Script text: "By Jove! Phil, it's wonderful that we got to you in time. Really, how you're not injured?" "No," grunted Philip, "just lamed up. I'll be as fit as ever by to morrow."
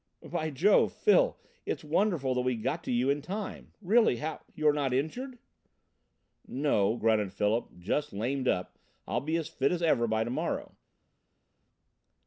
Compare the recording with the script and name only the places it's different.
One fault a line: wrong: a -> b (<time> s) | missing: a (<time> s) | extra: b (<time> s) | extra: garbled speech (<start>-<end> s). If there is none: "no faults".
no faults